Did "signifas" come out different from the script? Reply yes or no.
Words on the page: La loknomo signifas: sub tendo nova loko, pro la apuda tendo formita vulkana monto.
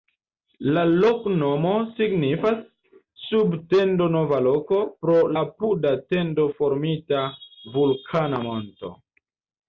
no